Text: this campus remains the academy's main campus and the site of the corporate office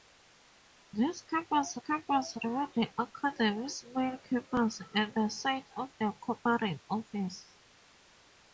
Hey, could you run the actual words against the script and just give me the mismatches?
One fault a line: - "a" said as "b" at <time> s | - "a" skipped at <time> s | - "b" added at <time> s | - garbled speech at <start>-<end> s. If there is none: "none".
- "campus" added at 1.8 s